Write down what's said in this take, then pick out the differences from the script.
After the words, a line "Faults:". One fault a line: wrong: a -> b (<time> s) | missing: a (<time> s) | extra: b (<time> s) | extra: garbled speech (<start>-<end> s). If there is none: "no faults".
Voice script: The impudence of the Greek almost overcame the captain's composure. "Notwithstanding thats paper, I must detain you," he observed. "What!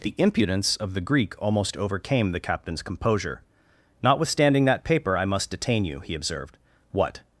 The impudence of the Greek almost overcame the captain's composure. "Notwithstanding that paper, I must detain you," he observed. "What!
Faults:
wrong: thats -> that (4.7 s)